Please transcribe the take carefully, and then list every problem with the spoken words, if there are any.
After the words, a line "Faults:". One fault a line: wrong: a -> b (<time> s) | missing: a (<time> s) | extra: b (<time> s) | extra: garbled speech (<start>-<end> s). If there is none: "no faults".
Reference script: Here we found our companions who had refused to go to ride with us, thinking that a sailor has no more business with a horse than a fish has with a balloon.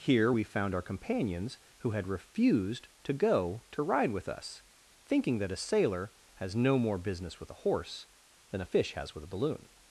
Here we found our companions who had refused to go to ride with us, thinking that a sailor has no more business with a horse than a fish has with a balloon.
Faults:
no faults